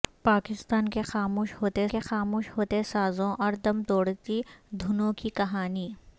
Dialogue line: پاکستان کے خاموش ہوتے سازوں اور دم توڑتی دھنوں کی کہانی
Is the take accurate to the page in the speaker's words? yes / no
no